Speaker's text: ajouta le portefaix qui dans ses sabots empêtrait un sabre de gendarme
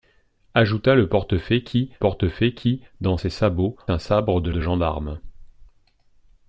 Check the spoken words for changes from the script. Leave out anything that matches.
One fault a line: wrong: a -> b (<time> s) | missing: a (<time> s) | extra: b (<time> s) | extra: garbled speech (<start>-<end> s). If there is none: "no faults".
extra: portefaix qui (2.0 s)
missing: empêtrait (3.8 s)
extra: de (4.5 s)